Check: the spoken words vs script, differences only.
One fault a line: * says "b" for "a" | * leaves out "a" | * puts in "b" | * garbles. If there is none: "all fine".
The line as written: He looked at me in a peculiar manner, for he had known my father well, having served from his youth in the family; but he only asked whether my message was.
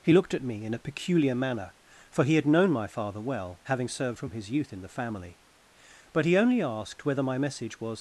all fine